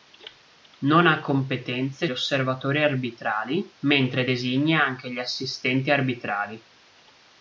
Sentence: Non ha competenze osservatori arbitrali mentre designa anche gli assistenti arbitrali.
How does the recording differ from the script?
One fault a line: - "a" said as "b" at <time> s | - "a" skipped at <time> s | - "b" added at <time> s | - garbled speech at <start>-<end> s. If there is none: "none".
none